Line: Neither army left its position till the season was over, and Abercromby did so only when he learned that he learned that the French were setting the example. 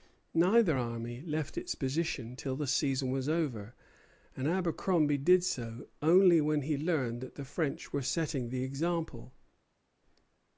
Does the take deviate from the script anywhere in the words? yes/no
yes